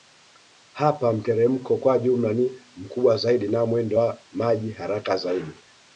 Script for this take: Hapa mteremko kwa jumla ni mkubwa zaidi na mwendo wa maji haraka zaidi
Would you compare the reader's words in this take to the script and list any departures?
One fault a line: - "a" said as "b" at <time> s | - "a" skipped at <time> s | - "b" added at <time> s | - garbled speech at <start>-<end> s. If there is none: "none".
none